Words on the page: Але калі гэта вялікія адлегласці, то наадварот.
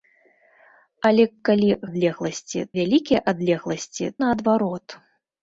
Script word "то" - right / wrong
wrong